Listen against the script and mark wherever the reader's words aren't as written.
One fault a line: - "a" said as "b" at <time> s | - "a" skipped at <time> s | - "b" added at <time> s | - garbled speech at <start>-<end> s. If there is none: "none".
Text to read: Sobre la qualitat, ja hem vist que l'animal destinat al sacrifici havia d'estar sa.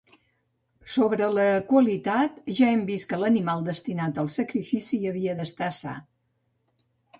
none